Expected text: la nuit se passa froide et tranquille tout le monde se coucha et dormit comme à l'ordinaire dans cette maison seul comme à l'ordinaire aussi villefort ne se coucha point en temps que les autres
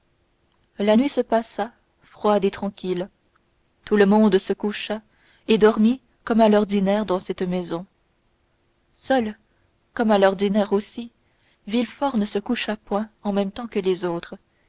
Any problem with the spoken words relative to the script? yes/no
yes